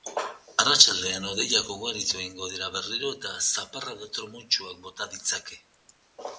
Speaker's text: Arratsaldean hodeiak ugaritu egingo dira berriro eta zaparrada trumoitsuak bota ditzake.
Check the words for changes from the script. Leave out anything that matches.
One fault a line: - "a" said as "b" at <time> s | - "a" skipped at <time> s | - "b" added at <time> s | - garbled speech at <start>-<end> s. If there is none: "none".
none